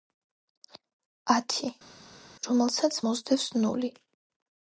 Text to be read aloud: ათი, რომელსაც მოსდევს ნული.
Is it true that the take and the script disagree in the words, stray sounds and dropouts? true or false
false